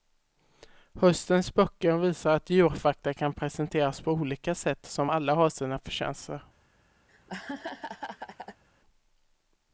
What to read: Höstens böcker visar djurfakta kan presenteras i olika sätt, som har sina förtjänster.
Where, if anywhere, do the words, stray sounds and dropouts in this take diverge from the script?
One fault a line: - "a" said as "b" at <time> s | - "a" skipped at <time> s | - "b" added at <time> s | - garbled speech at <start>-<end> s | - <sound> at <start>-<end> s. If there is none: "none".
- "att" added at 2.3 s
- "i" said as "på" at 4.0 s
- "alla" added at 5.1 s
- laugh at 7.1-8.6 s